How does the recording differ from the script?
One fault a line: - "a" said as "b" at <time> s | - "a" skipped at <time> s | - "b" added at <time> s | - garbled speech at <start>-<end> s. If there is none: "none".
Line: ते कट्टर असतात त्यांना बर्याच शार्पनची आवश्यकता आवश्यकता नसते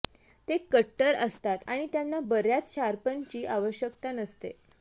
- "आणि" added at 1.7 s
- "आवश्यकता" skipped at 4.1 s